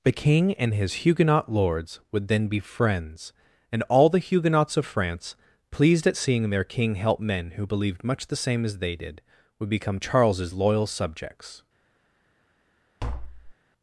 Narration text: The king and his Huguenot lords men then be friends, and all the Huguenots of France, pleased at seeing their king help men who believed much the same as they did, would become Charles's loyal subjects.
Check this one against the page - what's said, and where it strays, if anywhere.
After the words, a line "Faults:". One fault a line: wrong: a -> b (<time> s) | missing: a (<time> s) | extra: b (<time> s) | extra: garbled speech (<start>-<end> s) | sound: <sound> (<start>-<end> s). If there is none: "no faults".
The king and his Huguenot lords would then be friends, and all the Huguenots of France, pleased at seeing their king help men who believed much the same as they did, would become Charles's loyal subjects.
Faults:
wrong: men -> would (2.1 s)
sound: tap (13.0-13.5 s)